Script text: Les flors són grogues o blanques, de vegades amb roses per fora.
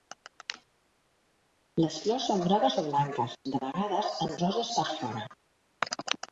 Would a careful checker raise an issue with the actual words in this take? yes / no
no